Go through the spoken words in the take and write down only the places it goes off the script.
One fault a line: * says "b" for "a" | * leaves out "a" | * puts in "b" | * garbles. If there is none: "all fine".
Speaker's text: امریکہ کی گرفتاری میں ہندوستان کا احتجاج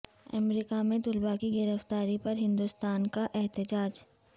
* puts in "میں طلباء"
* says "پر" for "میں"